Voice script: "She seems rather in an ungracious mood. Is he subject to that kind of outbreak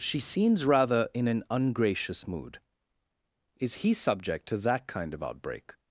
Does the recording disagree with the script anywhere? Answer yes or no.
no